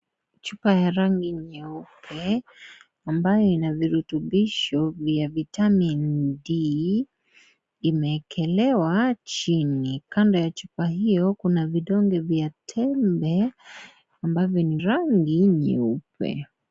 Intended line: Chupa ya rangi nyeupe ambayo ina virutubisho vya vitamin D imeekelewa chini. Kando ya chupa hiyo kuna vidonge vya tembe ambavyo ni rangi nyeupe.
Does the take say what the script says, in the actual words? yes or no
yes